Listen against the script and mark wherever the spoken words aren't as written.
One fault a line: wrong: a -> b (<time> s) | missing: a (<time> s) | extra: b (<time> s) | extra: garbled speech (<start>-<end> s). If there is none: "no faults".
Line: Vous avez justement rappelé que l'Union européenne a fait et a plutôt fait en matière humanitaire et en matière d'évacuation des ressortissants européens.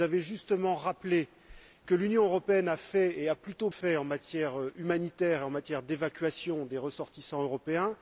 no faults